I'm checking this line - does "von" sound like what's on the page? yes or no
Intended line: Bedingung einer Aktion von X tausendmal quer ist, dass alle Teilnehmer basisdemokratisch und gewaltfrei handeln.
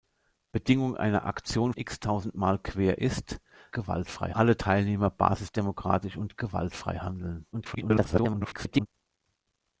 no